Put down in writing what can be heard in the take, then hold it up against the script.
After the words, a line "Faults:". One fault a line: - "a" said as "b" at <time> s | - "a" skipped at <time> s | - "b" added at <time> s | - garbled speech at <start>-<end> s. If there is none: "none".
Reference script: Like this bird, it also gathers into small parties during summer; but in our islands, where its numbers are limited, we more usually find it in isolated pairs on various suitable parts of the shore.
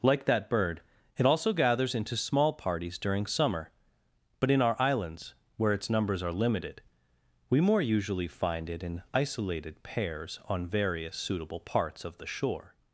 Like that bird, it also gathers into small parties during summer; but in our islands, where its numbers are limited, we more usually find it in isolated pairs on various suitable parts of the shore.
Faults:
- "this" said as "that" at 0.2 s